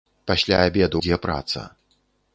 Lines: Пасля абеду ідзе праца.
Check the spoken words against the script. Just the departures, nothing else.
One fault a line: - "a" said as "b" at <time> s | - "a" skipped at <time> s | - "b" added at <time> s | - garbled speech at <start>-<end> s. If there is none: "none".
none